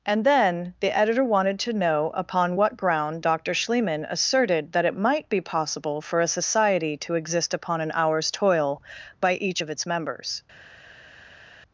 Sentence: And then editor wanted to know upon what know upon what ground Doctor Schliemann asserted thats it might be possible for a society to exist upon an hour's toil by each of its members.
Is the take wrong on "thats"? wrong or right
wrong